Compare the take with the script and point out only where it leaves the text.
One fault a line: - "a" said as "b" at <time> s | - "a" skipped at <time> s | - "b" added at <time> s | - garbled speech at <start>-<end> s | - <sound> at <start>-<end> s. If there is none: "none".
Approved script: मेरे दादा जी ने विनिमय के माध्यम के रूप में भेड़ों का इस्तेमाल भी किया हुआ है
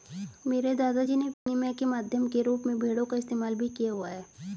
- dropout at 1.3-1.5 s